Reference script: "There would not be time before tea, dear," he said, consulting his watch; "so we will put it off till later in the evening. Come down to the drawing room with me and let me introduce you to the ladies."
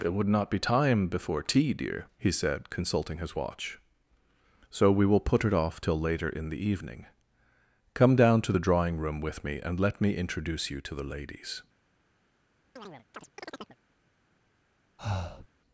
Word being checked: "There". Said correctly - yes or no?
no